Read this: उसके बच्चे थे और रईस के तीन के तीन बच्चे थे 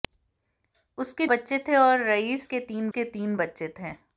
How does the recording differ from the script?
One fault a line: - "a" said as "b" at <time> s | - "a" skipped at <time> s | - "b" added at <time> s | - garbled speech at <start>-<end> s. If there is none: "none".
none